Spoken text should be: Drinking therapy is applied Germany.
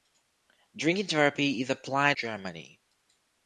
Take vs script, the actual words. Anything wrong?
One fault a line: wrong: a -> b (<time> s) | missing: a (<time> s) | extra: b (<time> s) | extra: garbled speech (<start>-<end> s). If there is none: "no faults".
no faults